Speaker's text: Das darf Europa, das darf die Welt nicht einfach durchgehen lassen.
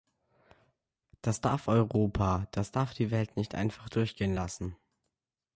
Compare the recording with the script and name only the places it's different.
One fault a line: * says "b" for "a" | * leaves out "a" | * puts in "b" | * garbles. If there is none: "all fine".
all fine